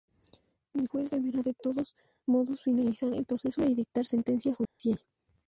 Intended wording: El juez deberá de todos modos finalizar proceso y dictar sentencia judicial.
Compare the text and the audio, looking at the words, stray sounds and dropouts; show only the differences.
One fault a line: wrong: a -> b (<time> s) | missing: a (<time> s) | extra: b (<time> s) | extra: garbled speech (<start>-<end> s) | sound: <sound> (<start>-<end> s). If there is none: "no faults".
extra: el (3.1 s)
sound: dropout (4.6-4.8 s)